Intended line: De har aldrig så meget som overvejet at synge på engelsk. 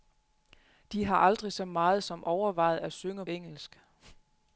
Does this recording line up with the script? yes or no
no